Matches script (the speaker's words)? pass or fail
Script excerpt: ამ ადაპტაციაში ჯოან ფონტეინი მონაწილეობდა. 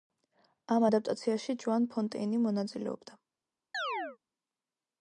pass